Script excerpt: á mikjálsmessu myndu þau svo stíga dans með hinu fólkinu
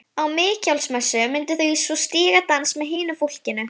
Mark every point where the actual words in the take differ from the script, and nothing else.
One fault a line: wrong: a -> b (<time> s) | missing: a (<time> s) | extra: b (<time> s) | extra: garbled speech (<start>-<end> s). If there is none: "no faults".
no faults